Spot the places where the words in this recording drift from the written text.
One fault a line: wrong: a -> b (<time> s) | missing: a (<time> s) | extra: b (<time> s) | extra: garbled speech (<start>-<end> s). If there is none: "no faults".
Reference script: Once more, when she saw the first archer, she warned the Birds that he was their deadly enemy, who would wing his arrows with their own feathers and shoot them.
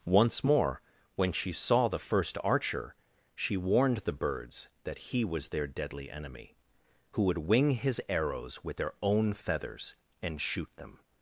no faults